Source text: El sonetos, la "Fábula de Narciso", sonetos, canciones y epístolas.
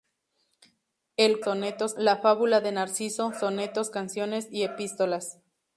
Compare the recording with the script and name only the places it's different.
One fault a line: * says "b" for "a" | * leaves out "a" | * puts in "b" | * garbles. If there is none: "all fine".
all fine